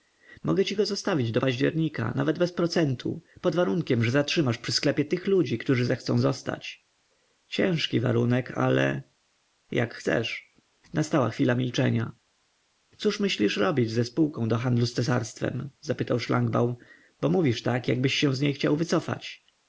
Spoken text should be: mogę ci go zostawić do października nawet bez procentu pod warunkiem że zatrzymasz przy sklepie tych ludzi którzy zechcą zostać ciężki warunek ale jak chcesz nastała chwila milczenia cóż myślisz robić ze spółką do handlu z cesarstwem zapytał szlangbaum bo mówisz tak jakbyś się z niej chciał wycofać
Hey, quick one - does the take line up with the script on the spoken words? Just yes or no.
yes